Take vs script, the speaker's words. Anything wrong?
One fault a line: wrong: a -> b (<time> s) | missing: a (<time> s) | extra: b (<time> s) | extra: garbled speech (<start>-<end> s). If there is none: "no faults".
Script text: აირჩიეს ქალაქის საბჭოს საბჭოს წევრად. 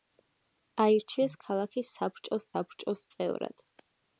no faults